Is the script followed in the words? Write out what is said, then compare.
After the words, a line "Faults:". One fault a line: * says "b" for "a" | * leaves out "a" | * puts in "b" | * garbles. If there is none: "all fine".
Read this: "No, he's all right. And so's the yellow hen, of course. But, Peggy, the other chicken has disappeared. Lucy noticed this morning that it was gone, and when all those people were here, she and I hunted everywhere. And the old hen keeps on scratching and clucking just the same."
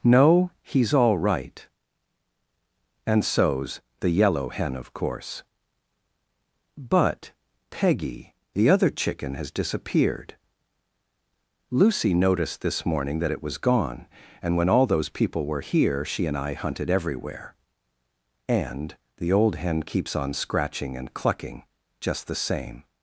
"No, he's all right. And so's the yellow hen, of course. But, Peggy, the other chicken has disappeared. Lucy noticed this morning that it was gone, and when all those people were here, she and I hunted everywhere. And the old hen keeps on scratching and clucking just the same."
Faults:
all fine